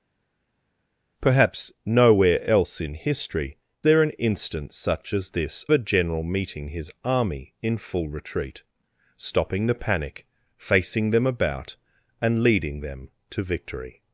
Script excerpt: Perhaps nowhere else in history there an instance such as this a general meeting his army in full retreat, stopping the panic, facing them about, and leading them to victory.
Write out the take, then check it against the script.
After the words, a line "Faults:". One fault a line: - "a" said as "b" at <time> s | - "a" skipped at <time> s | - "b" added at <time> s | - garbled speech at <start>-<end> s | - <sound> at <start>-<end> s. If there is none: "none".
Perhaps nowhere else in history there an instance such as this a general meeting his army in full retreat, stopping the panic, facing them about, and leading them to victory.
Faults:
none